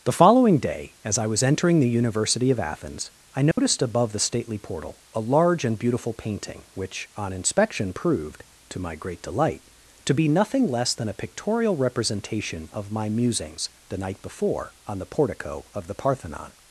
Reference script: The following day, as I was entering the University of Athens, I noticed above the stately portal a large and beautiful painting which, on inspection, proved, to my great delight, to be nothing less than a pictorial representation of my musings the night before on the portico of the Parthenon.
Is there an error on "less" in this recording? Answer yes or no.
no